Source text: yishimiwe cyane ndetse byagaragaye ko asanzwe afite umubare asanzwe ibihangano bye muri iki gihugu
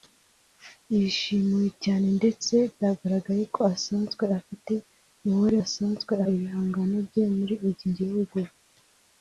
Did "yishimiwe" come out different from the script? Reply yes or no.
no